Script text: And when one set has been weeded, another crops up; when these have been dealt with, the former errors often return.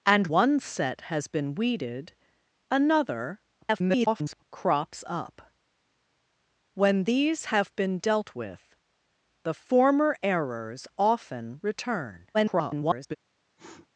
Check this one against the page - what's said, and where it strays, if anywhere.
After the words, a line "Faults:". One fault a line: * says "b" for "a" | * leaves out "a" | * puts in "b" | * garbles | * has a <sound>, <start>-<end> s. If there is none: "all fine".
And one set has been weeded, another [garbled] crops up; when these have been dealt with, the former errors often return. [garbled]
Faults:
* leaves out "when"
* garbles
* garbles
* has a sniff, 13.6-13.9 s